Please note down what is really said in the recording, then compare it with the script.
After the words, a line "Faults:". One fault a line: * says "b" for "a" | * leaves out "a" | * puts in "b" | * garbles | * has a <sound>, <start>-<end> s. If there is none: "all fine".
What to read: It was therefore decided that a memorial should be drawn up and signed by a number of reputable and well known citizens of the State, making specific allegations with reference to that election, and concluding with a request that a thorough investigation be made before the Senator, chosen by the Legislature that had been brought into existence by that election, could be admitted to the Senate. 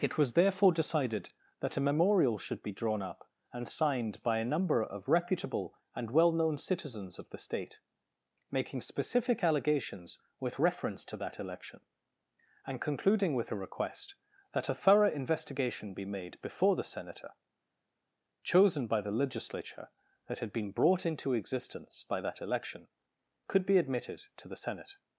It was therefore decided that a memorial should be drawn up and signed by a number of reputable and well known citizens of the State, making specific allegations with reference to that election, and concluding with a request that a thorough investigation be made before the Senator, chosen by the Legislature that had been brought into existence by that election, could be admitted to the Senate.
Faults:
all fine